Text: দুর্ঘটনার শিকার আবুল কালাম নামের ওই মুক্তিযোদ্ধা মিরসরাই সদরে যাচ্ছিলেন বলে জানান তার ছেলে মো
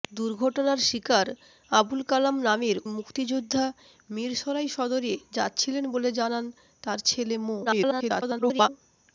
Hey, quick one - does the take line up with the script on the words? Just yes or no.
no